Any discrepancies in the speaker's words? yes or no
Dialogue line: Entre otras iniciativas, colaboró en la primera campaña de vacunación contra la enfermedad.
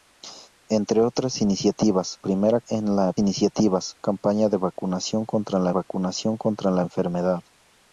yes